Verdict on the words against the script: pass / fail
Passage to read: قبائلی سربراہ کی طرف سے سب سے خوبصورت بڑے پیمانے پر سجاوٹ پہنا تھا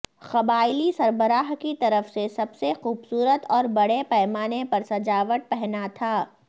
fail